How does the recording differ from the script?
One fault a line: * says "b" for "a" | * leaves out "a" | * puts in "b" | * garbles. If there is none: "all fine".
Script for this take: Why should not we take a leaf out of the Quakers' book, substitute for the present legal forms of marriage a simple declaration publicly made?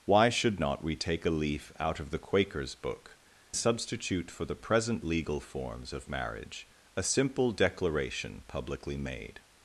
all fine